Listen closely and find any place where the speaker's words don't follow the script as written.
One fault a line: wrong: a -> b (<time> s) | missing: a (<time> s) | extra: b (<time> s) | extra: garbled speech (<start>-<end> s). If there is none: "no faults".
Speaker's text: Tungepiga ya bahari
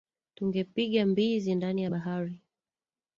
extra: mbizi ndani (1.1 s)